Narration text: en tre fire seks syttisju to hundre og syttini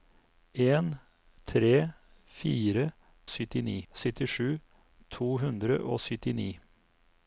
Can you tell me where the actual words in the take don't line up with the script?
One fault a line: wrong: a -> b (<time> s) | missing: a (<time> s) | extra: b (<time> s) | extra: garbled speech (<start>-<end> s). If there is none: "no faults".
wrong: seks -> syttini (3.3 s)